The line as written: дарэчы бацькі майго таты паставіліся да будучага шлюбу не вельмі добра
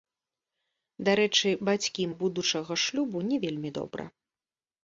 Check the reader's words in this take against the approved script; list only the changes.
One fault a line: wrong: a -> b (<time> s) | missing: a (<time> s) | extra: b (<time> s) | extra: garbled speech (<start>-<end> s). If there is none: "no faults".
missing: майго таты паставіліся (2.1 s)